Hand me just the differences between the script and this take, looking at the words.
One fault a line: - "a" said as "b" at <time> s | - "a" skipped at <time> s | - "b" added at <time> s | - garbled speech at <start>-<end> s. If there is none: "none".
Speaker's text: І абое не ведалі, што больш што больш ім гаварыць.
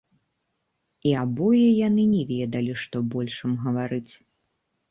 - "яны" added at 1.9 s
- "што больш" skipped at 3.4 s